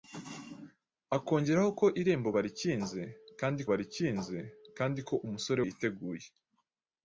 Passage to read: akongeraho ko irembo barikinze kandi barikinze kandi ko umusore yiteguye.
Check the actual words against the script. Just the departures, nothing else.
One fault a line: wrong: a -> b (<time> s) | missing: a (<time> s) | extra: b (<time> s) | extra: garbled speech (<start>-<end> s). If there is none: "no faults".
no faults